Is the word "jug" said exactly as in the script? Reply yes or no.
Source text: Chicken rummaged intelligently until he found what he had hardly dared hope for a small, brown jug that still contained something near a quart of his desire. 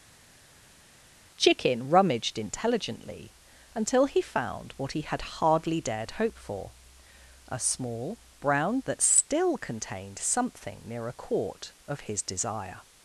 no